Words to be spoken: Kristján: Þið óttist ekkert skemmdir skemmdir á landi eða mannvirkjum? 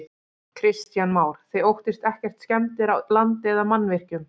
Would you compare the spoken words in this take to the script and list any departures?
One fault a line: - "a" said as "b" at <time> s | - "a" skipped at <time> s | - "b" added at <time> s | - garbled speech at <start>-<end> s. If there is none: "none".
- "Már" added at 1.2 s
- "skemmdir" skipped at 2.9 s